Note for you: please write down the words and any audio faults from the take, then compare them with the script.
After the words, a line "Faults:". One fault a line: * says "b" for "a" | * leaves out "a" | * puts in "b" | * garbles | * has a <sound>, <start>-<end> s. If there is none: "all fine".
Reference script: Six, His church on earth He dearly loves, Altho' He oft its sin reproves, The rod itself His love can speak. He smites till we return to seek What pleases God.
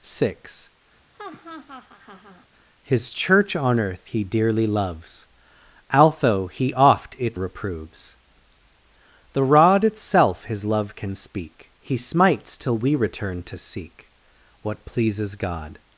Six, His church on earth He dearly loves, Altho' He oft its reproves, The rod itself His love can speak. He smites till we return to seek What pleases God.
Faults:
* has a laugh, 1.1-2.5 s
* leaves out "sin"